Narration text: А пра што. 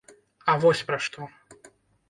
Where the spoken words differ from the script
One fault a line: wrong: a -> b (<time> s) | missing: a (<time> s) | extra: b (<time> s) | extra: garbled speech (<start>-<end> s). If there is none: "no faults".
extra: вось (0.6 s)